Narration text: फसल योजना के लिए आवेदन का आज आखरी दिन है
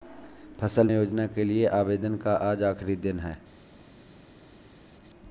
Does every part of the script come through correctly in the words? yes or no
yes